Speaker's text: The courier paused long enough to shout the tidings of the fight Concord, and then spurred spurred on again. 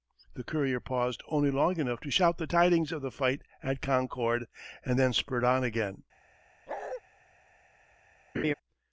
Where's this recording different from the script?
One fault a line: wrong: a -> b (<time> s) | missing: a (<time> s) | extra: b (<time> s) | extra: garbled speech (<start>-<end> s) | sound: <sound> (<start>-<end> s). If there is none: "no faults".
extra: only (1.3 s)
extra: at (3.6 s)
missing: spurred (5.4 s)
sound: bark (6.7-7.0 s)
sound: laugh (8.3-8.5 s)